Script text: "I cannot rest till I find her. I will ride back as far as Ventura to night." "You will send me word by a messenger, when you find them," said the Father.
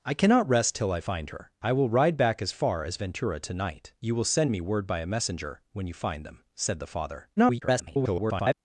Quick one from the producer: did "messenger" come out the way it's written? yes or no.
yes